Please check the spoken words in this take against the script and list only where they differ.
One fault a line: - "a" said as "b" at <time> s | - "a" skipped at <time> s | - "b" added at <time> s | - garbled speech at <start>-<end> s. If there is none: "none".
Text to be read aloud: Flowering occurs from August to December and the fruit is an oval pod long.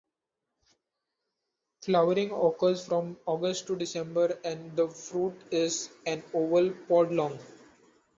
none